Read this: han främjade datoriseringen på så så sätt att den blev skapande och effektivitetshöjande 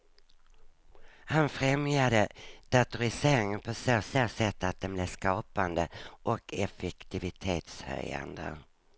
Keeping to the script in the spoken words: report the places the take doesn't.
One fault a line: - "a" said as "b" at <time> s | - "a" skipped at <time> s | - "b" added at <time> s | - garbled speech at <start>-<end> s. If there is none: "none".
none